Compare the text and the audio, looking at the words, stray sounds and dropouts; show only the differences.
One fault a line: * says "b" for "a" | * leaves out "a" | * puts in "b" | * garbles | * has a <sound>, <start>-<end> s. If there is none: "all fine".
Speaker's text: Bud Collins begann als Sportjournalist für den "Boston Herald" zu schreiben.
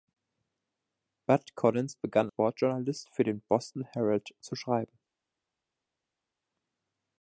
* leaves out "als"